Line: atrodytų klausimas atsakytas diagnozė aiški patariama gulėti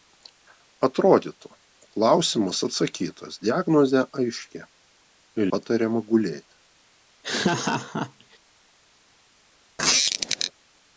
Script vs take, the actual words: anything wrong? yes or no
no